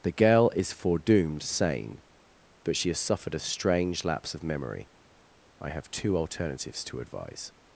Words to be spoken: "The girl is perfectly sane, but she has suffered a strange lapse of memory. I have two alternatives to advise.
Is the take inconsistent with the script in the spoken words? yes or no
yes